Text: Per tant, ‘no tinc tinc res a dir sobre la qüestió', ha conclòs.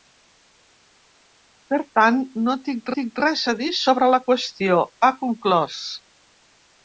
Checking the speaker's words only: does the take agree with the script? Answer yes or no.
yes